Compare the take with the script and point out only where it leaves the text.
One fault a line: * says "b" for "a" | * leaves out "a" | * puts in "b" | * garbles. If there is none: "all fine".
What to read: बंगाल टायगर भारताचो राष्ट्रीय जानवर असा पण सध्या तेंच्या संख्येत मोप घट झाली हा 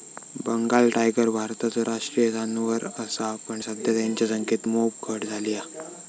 all fine